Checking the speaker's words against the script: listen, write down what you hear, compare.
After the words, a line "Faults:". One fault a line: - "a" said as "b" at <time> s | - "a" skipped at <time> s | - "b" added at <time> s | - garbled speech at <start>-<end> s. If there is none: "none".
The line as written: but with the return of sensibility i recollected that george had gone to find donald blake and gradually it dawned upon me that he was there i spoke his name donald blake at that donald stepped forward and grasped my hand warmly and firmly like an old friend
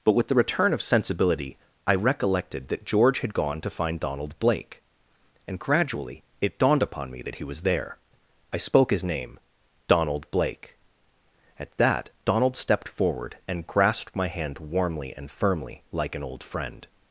but with the return of sensibility i recollected that george had gone to find donald blake and gradually it dawned upon me that he was there i spoke his name donald blake at that donald stepped forward and grasped my hand warmly and firmly like an old friend
Faults:
none